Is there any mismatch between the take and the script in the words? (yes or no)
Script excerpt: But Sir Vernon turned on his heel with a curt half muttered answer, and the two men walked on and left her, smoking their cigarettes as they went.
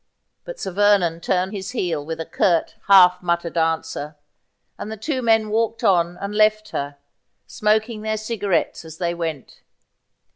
yes